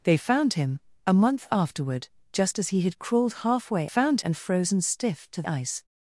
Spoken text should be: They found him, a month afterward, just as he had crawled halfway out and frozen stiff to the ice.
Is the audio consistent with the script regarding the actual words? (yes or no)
no